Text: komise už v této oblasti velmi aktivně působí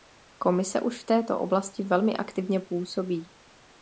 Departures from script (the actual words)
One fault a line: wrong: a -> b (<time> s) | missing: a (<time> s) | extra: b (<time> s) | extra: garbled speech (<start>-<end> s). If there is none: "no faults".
no faults